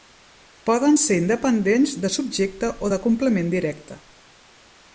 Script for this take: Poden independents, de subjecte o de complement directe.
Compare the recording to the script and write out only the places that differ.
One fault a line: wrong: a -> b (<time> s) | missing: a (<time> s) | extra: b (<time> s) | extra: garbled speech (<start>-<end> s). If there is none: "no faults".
extra: ser (1.0 s)